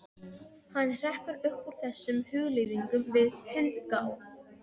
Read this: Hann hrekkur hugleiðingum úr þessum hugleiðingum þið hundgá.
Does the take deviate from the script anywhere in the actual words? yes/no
yes